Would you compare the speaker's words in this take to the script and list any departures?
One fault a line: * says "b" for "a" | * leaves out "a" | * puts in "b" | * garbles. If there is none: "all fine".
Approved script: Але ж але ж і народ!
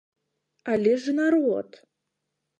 * leaves out "але ж"